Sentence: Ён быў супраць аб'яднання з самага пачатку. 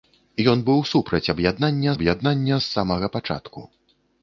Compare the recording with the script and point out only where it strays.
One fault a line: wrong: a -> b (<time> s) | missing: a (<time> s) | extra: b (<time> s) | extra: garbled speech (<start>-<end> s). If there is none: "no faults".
extra: аб'яднання (2.0 s)